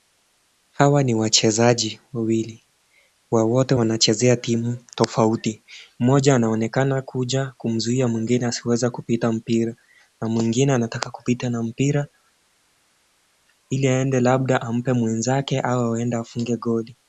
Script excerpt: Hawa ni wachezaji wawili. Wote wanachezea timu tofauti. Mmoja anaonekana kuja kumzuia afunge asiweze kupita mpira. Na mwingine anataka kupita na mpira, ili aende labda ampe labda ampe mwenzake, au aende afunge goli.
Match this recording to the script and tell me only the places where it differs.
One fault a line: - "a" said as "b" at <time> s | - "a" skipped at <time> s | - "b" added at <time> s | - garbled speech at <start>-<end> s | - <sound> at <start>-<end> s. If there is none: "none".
- "afunge" said as "mwingine" at 8.1 s
- "labda ampe" skipped at 14.9 s